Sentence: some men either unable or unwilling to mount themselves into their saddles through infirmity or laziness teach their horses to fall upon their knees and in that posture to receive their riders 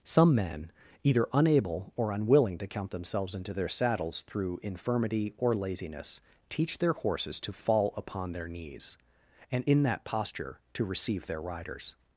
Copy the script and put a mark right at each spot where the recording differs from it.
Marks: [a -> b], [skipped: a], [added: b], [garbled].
some men either unable or unwilling to [mount -> count] themselves into their saddles through infirmity or laziness teach their horses to fall upon their knees and in that posture to receive their riders